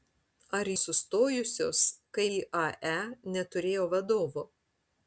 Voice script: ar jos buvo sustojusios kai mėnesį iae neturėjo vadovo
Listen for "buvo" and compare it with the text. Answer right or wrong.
wrong